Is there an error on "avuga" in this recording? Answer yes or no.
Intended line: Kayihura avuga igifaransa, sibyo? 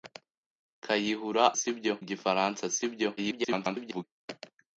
yes